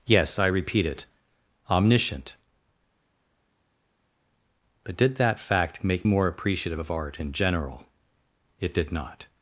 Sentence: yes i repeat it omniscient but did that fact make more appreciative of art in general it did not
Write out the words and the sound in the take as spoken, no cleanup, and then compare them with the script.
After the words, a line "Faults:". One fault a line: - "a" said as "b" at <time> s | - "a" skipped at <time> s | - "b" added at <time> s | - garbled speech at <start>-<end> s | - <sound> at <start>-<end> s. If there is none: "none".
yes i repeat it omniscient but did that fact make more appreciative of art in general it did not
Faults:
none